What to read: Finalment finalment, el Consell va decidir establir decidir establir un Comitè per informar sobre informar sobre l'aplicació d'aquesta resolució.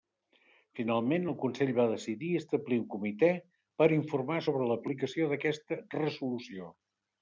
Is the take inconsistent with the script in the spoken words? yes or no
yes